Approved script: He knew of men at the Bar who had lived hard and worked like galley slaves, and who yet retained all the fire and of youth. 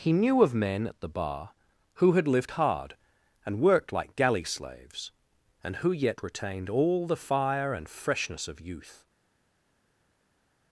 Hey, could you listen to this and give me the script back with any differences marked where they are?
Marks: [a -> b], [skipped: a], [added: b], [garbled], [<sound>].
He knew of men at the Bar who had lived hard and worked like galley slaves, and who yet retained all the fire and [added: freshness] of youth.